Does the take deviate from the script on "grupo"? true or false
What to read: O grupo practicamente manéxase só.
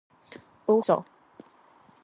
true